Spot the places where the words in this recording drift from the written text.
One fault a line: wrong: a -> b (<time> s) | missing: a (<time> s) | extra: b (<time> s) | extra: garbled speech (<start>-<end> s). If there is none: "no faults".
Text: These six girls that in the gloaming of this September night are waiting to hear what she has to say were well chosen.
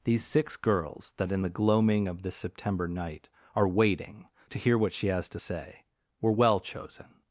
no faults